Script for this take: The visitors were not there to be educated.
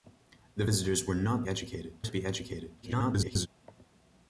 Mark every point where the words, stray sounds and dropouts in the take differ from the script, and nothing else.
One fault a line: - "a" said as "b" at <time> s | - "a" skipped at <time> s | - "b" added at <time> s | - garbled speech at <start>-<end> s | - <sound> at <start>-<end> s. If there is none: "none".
- "there" said as "educated" at 1.5 s
- garbled speech at 2.8-3.5 s